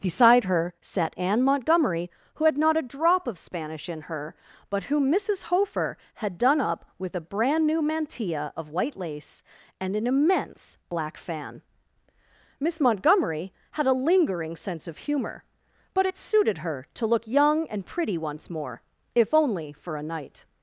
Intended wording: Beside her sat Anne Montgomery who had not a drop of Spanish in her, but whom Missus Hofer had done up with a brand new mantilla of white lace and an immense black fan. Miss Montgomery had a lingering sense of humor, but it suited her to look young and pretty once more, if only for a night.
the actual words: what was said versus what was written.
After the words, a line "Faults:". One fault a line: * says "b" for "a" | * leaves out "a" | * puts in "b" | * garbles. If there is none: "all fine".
Beside her sat Anne Montgomery who had not a drop of Spanish in her, but whom Missus Hofer had done up with a brand new mantilla of white lace and an immense black fan. Miss Montgomery had a lingering sense of humor, but it suited her to look young and pretty once more, if only for a night.
Faults:
all fine